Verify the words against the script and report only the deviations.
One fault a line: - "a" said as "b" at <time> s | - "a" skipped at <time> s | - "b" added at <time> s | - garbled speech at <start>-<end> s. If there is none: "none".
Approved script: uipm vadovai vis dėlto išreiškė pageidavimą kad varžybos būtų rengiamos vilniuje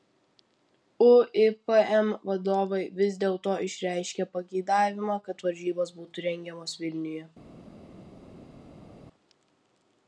none